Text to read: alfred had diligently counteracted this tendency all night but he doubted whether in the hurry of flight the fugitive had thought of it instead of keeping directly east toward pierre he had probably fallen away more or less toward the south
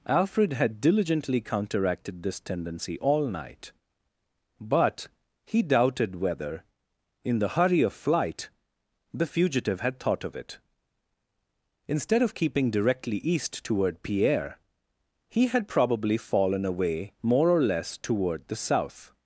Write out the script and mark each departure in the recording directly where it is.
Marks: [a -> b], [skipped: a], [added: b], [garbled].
alfred had diligently counteracted this tendency all night but he doubted whether in the hurry of flight the fugitive had thought of it instead of keeping directly east toward pierre he had probably fallen away more or less toward the south